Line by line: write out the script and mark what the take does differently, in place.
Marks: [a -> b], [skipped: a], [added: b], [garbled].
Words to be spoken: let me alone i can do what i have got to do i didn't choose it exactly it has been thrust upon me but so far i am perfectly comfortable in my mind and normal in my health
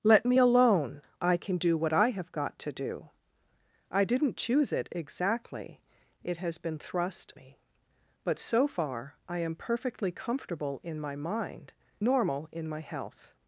let me alone i can do what i have got to do i didn't choose it exactly it has been thrust [skipped: upon] me but so far i am perfectly comfortable in my mind [skipped: and] normal in my health